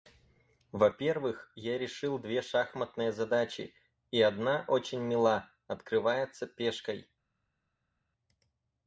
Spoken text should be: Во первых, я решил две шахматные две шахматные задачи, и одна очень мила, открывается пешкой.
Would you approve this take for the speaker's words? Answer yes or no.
no